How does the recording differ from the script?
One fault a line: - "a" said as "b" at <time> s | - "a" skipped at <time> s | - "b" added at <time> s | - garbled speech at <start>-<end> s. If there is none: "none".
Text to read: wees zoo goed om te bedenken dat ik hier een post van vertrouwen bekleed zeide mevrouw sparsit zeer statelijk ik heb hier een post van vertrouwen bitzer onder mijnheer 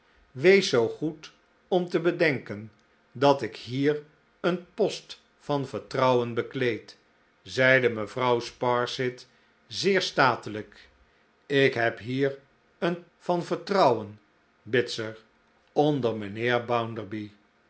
- "post" skipped at 13.1 s